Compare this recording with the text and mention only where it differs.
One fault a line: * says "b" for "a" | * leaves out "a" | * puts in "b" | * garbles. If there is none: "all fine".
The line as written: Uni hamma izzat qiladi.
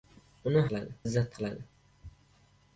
* says "qiladi" for "hamma"